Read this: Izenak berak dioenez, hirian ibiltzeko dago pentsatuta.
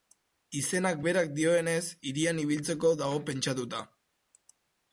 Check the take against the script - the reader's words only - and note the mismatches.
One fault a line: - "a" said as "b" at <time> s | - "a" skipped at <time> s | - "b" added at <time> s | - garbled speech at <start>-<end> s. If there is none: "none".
none